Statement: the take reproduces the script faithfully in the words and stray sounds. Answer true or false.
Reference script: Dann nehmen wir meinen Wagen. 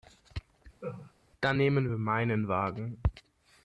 false